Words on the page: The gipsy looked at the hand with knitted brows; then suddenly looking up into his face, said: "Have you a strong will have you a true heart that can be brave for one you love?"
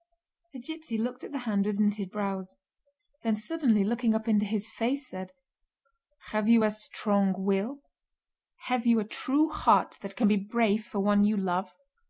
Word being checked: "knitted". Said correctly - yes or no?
yes